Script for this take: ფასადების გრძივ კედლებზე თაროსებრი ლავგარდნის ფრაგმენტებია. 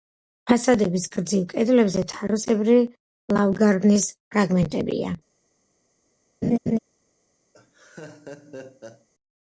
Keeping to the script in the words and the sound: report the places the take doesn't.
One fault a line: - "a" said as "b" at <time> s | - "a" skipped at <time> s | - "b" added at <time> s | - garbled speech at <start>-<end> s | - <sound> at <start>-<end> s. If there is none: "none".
- laugh at 6.4-6.8 s
- laugh at 7.5-9.1 s